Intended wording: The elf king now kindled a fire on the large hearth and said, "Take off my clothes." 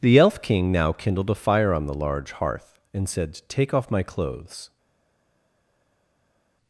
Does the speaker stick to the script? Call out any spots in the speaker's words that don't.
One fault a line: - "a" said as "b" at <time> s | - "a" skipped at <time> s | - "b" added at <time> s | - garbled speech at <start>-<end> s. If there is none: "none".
none